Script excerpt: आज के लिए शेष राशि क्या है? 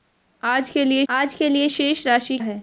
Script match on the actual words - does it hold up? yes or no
no